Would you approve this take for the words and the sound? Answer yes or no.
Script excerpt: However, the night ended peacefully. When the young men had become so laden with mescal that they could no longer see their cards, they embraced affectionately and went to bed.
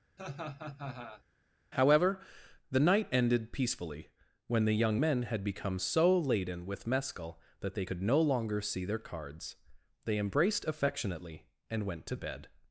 no